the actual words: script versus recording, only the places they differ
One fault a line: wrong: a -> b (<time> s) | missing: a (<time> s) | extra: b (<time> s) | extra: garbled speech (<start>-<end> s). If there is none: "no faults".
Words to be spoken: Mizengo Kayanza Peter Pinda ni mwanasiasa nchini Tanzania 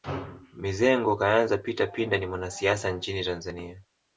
no faults